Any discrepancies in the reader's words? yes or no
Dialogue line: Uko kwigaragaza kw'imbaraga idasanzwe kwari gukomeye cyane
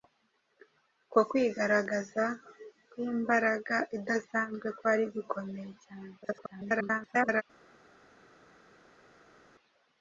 yes